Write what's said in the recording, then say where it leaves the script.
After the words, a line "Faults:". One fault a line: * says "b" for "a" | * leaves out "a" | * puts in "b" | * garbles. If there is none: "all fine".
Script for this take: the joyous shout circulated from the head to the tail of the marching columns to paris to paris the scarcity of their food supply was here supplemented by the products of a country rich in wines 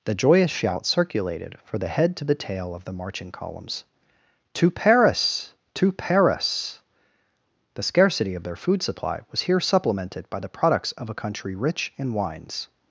the joyous shout circulated for the head to the tail of the marching columns to paris to paris the scarcity of their food supply was here supplemented by the products of a country rich in wines
Faults:
* says "for" for "from"